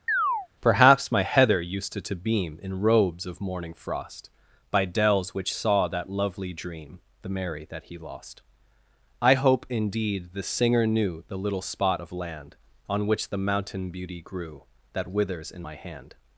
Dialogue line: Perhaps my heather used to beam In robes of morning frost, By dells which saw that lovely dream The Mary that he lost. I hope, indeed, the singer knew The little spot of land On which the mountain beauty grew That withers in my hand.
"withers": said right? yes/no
yes